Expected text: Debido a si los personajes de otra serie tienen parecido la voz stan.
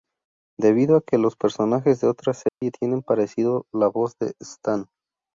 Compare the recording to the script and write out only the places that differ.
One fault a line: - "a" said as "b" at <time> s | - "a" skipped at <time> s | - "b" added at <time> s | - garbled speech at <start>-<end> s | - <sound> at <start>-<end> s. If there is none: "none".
- "si" said as "que" at 1.0 s
- dropout at 2.5-2.6 s
- "de" added at 4.2 s